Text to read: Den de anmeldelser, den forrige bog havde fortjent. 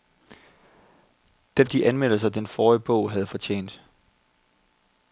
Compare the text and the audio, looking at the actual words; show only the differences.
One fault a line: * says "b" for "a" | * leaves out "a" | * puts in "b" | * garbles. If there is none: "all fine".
all fine